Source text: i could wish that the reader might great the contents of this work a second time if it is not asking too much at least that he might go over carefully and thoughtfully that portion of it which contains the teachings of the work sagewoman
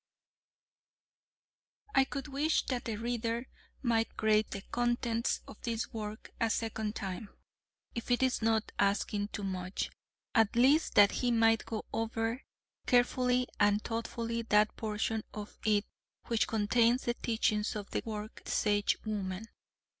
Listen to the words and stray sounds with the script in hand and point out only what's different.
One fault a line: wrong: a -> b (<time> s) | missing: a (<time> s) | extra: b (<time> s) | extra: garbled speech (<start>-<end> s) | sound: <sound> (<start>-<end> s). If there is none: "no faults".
no faults